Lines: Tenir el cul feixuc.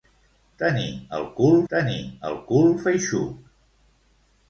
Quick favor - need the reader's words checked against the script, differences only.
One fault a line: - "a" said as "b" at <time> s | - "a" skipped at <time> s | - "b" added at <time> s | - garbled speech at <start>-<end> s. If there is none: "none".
- "tenir el cul" added at 1.7 s